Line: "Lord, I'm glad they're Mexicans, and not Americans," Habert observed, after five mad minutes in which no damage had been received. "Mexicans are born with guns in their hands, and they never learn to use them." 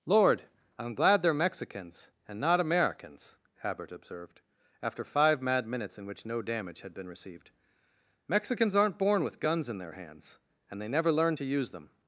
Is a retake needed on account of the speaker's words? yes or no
yes